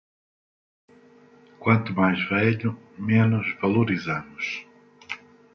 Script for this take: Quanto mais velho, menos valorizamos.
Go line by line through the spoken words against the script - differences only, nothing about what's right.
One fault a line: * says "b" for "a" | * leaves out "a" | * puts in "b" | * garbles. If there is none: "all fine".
all fine